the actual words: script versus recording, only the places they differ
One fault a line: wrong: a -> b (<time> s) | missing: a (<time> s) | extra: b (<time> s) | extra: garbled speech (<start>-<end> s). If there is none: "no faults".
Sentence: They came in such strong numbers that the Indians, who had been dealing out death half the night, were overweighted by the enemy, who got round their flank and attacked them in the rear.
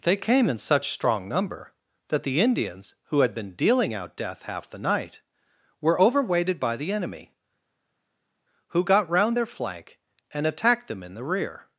wrong: numbers -> number (1.3 s)